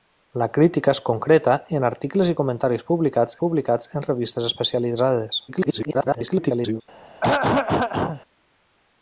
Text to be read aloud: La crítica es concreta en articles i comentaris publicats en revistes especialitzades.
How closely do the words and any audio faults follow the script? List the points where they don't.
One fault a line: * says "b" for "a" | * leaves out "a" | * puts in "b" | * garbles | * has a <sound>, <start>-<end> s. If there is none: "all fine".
* puts in "publicats"
* garbles
* has a throat clearing, 7.2-8.2 s